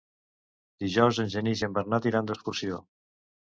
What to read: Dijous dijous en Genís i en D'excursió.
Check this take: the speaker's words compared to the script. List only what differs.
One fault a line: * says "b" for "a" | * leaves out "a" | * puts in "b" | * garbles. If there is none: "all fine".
* leaves out "dijous"
* puts in "Bernat iran"